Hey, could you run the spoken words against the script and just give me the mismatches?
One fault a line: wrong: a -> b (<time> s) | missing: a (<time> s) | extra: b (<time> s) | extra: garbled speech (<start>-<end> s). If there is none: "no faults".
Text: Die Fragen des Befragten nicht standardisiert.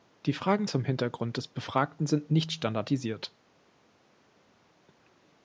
extra: zum Hintergrund (0.6 s)
extra: sind (2.1 s)